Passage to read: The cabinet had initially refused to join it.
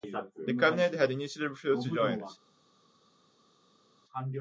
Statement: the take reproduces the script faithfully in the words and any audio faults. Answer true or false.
true